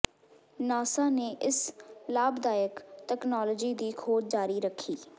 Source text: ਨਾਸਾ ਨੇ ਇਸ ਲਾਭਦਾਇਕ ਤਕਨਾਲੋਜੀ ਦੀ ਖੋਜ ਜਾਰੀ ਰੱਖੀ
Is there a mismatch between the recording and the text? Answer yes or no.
no